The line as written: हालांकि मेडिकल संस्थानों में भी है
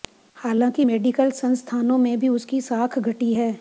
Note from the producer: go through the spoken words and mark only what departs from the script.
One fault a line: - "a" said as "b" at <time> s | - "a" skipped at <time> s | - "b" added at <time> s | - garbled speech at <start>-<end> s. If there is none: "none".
- "उसकी साख घटी" added at 2.3 s